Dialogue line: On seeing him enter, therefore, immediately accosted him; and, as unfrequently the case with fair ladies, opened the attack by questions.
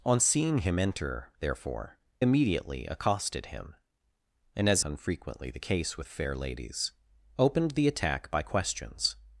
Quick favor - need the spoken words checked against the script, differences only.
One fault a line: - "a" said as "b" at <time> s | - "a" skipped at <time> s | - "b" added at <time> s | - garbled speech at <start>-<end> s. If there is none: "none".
none